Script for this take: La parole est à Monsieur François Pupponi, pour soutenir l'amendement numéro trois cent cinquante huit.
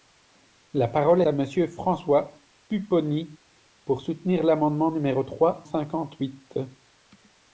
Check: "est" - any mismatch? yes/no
yes